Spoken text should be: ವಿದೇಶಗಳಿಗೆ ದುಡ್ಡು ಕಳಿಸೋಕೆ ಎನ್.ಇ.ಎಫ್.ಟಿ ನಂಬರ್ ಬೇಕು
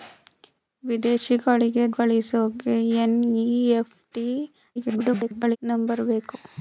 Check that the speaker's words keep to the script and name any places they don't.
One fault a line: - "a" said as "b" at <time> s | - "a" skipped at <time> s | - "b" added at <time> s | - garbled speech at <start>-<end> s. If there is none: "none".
- "ದುಡ್ಡು" skipped at 1.9 s
- garbled speech at 4.8-5.6 s